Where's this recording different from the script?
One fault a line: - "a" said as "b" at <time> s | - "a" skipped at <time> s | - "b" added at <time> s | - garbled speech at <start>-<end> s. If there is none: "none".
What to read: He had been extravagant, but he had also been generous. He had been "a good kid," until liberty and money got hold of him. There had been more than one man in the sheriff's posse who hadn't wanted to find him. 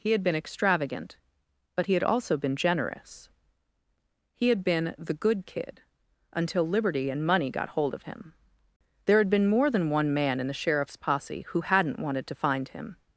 - "a" said as "the" at 5.0 s